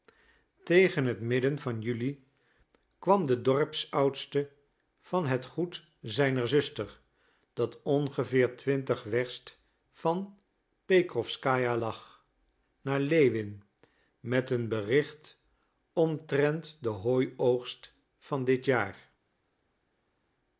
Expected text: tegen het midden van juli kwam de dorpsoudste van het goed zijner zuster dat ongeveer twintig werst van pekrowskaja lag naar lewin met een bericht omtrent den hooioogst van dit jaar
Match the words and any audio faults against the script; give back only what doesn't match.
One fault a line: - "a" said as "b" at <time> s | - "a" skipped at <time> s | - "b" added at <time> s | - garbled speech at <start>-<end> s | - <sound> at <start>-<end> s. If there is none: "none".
none